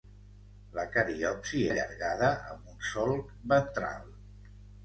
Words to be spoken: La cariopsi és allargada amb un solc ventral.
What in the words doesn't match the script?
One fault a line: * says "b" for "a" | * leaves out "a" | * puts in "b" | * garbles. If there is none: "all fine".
* leaves out "és"